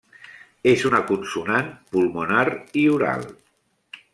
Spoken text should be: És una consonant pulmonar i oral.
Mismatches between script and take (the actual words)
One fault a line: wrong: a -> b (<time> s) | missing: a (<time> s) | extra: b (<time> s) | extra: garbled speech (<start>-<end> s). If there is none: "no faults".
no faults